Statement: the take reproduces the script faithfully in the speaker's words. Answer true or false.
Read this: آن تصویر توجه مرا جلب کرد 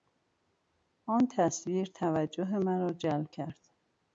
true